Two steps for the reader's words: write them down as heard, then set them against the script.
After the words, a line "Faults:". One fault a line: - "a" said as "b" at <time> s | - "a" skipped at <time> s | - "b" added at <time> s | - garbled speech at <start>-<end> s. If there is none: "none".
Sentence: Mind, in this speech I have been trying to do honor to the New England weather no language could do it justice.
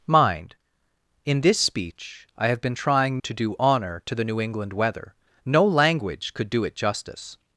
Mind, in this speech I have been trying to do honor to the New England weather no language could do it justice.
Faults:
none